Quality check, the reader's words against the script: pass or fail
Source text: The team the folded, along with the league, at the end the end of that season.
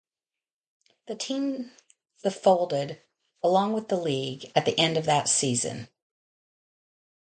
fail